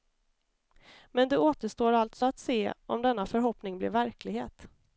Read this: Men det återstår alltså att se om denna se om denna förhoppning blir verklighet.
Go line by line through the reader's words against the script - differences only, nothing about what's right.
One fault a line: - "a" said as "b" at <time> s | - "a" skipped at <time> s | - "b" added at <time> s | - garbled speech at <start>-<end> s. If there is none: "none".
- "se om denna" skipped at 3.3 s